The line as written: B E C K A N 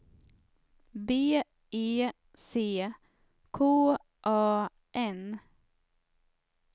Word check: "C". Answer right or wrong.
right